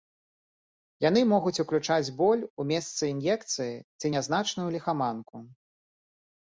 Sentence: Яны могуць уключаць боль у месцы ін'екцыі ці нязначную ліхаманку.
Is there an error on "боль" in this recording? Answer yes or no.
no